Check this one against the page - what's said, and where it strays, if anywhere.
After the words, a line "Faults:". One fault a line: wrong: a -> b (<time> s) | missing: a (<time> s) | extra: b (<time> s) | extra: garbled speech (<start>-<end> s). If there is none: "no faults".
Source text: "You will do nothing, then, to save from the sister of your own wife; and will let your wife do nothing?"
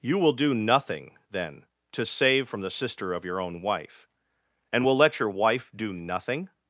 "You will do nothing, then, to save from the sister of your own wife; and will let your wife do nothing?"
Faults:
no faults